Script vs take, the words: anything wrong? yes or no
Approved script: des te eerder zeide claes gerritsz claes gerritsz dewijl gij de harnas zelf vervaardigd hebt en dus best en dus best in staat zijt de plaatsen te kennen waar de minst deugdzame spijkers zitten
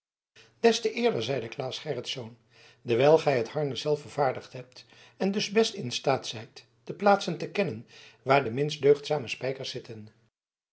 yes